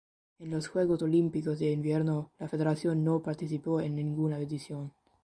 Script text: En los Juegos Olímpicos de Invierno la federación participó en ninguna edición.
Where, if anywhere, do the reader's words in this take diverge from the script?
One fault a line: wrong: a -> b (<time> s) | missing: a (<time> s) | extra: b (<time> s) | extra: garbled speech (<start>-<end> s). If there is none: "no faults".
extra: no (3.0 s)